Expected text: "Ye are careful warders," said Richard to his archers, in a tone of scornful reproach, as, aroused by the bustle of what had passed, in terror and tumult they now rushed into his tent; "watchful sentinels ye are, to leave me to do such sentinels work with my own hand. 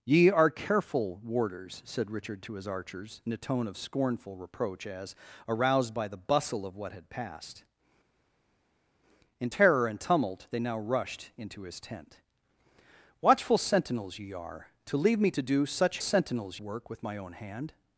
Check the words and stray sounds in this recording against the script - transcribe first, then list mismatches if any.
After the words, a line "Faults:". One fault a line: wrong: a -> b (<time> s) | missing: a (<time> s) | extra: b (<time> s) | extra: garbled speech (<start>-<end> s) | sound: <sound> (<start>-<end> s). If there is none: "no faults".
"Ye are careful warders," said Richard to his archers, in a tone of scornful reproach, as, aroused by the bustle of what had passed, in terror and tumult they now rushed into his tent; "watchful sentinels ye are, to leave me to do such sentinels work with my own hand.
Faults:
no faults